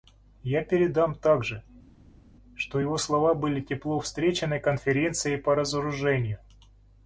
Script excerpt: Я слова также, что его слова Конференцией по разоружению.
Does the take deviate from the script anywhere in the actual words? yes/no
yes